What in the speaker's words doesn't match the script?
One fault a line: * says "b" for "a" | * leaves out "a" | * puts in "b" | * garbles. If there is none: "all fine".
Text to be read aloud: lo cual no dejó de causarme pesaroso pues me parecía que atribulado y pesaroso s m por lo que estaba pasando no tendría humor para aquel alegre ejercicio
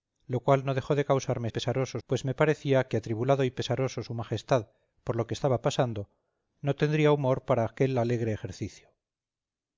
all fine